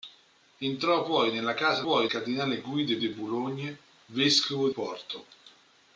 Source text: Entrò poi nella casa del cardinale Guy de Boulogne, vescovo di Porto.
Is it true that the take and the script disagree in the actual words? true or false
true